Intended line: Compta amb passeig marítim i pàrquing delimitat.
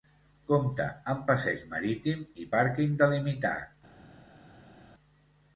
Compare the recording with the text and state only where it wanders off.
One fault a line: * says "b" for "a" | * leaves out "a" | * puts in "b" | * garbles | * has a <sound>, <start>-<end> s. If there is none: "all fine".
all fine